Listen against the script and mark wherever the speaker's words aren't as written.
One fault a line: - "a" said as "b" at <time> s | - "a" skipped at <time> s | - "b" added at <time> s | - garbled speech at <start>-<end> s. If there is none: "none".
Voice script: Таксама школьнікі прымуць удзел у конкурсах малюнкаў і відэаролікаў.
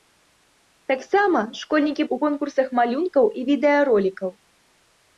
- "прымуць удзел" skipped at 2.0 s